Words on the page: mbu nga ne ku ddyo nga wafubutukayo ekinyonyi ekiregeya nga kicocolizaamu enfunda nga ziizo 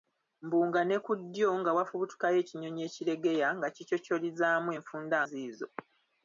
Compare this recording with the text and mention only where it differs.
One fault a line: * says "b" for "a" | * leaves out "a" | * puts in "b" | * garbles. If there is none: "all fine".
* leaves out "nga"